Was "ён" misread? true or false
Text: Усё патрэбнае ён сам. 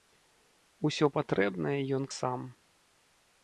false